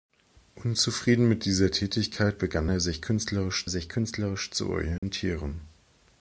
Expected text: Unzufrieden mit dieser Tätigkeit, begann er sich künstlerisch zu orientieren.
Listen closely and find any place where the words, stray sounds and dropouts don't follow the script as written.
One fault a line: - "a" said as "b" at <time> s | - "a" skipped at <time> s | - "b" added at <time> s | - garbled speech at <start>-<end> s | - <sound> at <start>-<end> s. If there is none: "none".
- "sich künstlerisch" added at 3.7 s
- dropout at 5.0-5.0 s